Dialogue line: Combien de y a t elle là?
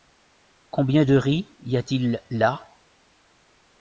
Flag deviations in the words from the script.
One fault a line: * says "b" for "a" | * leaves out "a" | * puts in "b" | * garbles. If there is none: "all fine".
* puts in "riz"
* says "il" for "elle"